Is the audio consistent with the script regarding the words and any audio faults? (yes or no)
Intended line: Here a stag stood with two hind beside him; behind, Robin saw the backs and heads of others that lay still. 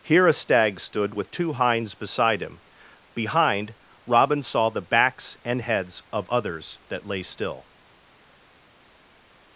no